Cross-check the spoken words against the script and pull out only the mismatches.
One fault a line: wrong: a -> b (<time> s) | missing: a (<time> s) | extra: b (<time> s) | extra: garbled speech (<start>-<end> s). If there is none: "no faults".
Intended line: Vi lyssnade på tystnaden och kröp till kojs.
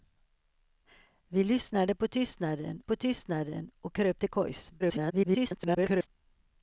extra: på tystnaden (2.8 s)
extra: garbled speech (4.8-6.1 s)